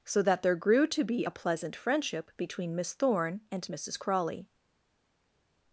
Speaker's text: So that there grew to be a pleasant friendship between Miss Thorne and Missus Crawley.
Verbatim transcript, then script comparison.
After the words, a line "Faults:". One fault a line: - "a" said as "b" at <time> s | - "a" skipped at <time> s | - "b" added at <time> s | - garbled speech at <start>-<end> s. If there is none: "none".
So that there grew to be a pleasant friendship between Miss Thorne and Missus Crawley.
Faults:
none